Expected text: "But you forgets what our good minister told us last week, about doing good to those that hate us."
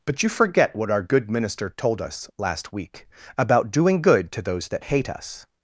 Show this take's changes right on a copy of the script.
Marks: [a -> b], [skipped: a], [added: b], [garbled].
"But you [forgets -> forget] what our good minister told us last week, about doing good to those that hate us."